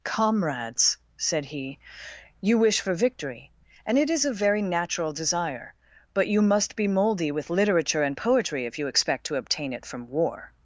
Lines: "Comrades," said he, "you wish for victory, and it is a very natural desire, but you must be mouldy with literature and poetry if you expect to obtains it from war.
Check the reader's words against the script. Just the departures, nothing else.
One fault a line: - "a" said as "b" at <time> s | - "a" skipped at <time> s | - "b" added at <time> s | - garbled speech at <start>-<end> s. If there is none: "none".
- "obtains" said as "obtain" at 9.3 s